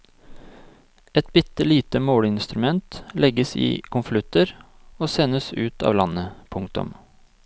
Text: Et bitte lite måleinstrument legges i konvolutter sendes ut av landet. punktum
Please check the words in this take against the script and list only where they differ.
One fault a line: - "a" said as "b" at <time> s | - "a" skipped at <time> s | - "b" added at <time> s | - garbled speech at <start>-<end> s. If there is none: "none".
- "og" added at 5.0 s